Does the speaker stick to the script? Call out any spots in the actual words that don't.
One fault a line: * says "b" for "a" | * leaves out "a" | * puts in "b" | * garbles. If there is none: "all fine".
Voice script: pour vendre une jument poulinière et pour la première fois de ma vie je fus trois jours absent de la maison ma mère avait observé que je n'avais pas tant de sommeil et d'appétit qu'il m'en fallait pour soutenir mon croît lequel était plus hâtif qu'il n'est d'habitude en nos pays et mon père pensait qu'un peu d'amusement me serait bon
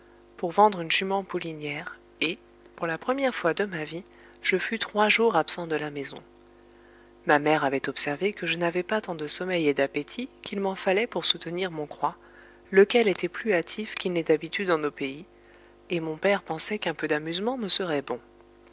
all fine